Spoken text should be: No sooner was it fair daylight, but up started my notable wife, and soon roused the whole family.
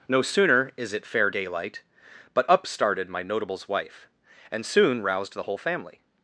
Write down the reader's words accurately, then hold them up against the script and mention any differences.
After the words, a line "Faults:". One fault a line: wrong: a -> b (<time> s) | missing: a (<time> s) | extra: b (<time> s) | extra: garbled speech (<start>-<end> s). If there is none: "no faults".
No sooner is it fair daylight, but up started my notables wife, and soon roused the whole family.
Faults:
wrong: was -> is (0.8 s)
wrong: notable -> notables (3.2 s)